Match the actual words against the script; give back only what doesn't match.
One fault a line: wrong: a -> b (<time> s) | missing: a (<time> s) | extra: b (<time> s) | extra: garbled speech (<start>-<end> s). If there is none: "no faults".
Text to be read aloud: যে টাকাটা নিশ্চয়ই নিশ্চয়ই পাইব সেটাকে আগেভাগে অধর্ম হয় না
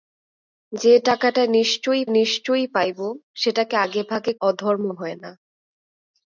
no faults